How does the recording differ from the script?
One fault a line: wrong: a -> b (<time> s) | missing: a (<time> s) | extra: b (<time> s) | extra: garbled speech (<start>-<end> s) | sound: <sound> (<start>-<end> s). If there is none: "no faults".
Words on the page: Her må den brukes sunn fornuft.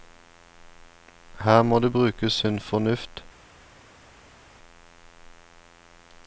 wrong: den -> det (1.8 s)